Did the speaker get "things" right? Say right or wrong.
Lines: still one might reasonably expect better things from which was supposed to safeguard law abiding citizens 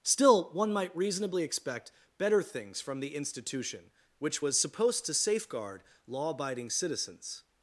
right